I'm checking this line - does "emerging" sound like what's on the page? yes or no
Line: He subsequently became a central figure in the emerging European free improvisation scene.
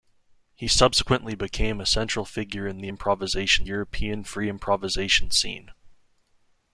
no